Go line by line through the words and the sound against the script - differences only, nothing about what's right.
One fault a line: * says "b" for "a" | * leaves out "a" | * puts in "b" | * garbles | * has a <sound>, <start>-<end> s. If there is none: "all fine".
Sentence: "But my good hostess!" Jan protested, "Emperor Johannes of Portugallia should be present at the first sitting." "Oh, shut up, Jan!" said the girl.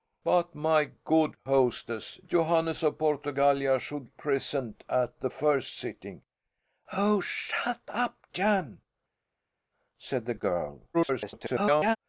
* leaves out "Jan protested Emperor"
* leaves out "be"
* garbles